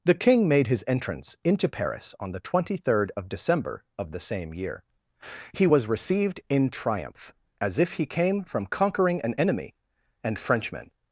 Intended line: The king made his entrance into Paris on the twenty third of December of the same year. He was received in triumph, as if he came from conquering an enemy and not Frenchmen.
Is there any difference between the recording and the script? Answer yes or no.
yes